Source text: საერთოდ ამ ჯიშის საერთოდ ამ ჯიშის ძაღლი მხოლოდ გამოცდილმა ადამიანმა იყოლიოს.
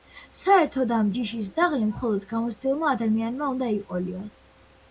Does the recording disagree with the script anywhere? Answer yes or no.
yes